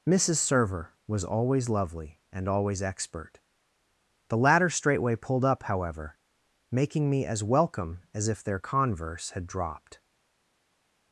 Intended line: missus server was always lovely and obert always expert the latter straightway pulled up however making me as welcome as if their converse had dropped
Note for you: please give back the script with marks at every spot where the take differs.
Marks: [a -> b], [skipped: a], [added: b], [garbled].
missus server was always lovely and [skipped: obert] always expert the latter straightway pulled up however making me as welcome as if their converse had dropped